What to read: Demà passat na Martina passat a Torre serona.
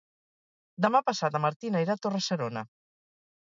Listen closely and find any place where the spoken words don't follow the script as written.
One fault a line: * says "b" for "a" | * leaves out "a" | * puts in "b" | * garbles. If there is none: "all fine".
* says "irà" for "passat"